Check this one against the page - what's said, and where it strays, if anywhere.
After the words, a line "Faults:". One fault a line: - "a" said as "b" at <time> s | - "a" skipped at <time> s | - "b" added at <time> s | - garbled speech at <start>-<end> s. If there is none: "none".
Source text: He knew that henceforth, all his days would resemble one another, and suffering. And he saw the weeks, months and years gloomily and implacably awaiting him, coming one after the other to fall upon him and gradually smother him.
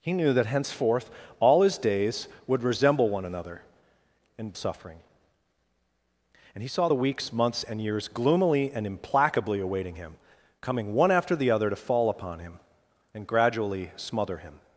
He knew that henceforth, all his days would resemble one another, and suffering. And he saw the weeks, months and years gloomily and implacably awaiting him, coming one after the other to fall upon him and gradually smother him.
Faults:
none